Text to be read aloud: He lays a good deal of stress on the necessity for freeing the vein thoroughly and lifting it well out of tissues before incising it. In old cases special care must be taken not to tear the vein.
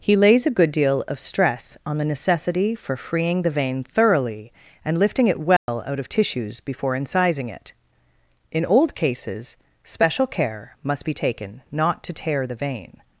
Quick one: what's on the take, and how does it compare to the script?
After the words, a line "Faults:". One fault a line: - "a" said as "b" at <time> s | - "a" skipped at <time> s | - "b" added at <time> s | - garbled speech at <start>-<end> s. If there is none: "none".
He lays a good deal of stress on the necessity for freeing the vein thoroughly and lifting it well out of tissues before incising it. In old cases special care must be taken not to tear the vein.
Faults:
none